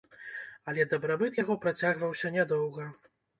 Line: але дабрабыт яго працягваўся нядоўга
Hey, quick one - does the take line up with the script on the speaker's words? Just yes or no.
yes